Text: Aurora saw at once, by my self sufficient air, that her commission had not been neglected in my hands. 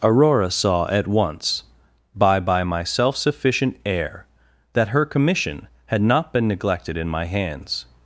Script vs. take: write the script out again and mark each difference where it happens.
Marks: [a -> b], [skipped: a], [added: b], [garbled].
Aurora saw at once, by [added: by] my self sufficient air, that her commission had not been neglected in my hands.